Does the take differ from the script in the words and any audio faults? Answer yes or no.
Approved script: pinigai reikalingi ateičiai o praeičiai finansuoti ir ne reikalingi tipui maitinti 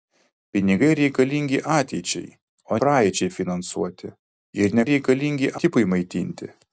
no